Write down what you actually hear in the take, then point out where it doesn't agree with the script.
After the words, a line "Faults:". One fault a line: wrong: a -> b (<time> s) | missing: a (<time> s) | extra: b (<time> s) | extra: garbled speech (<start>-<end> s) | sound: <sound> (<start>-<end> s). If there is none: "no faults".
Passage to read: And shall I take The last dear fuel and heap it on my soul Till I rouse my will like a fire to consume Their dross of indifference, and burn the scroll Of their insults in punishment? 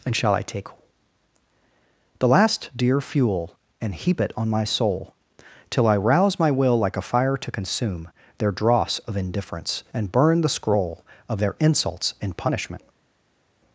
And shall I take The last dear fuel and heap it on my soul Till I rouse my will like a fire to consume Their dross of indifference, and burn the scroll Of their insults in punishment?
Faults:
no faults